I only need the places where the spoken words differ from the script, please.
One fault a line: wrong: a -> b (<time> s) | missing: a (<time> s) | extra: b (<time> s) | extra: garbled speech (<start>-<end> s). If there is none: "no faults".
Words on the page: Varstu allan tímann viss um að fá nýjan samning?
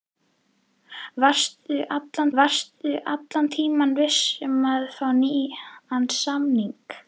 extra: varstu allan (2.4 s)